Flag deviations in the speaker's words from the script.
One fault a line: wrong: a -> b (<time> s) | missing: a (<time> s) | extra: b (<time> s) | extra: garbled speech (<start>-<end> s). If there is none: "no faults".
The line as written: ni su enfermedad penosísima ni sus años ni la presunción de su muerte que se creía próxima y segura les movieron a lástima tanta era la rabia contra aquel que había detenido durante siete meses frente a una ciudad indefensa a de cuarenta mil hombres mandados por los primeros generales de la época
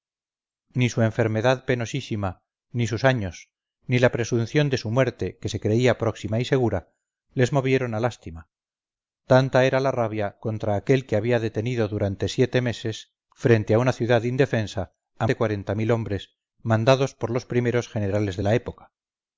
no faults